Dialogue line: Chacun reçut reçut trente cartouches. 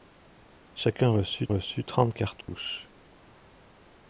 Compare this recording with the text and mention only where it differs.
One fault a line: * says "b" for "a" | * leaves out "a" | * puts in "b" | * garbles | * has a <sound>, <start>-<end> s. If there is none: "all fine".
* has a dropout, 2.4-2.5 s